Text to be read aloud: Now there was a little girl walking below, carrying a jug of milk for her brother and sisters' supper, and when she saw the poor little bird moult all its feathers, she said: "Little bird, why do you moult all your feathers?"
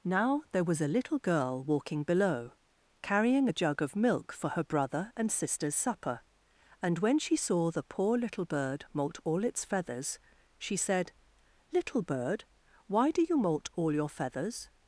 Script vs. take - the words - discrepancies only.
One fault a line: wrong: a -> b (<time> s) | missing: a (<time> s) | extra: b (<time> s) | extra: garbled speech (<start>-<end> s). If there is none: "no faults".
no faults